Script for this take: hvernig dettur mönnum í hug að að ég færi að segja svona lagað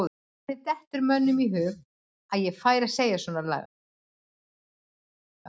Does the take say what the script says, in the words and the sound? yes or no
no